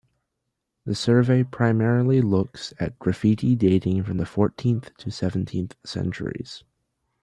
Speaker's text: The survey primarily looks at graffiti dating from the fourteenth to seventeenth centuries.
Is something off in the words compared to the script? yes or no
no